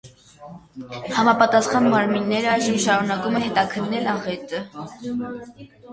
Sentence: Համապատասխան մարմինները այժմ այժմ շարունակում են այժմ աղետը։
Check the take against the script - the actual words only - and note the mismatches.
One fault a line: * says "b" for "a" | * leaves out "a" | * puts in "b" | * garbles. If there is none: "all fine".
* leaves out "այժմ"
* says "հետաքննել" for "այժմ"